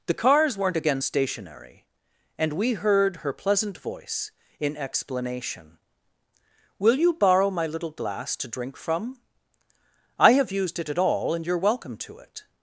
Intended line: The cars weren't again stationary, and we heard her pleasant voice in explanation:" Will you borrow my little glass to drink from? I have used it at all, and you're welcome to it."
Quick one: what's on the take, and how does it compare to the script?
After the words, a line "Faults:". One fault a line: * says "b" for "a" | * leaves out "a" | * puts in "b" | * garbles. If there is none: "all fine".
The cars weren't again stationary, and we heard her pleasant voice in explanation:" Will you borrow my little glass to drink from? I have used it at all, and you're welcome to it."
Faults:
all fine